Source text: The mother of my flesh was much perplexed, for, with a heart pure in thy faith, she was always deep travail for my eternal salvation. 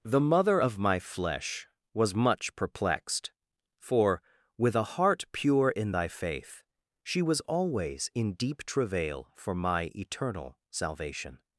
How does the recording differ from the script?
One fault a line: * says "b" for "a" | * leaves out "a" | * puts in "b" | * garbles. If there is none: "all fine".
* puts in "in"